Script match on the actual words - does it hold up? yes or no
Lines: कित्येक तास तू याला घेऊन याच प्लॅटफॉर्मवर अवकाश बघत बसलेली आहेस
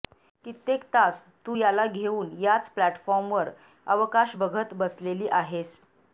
yes